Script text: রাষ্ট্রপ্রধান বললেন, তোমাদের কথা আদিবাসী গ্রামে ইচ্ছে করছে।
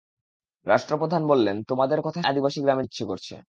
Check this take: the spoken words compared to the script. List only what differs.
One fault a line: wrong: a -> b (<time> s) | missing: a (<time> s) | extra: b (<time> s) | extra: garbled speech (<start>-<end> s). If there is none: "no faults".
no faults